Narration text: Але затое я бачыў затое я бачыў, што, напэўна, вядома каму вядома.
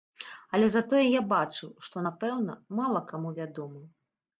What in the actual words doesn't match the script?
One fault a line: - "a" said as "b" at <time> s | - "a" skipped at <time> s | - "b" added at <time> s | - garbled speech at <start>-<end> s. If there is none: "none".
- "затое я бачыў" skipped at 1.7 s
- "вядома" said as "мала" at 2.8 s